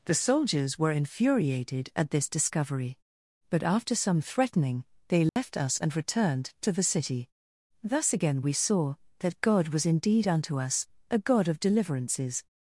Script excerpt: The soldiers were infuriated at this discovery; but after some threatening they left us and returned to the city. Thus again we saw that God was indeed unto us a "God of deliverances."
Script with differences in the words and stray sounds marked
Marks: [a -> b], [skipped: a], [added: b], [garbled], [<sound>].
The soldiers were infuriated at this discovery; but after some threatening they left [dropout] us and returned to the city. Thus again we saw that God was indeed unto us a "God of deliverances."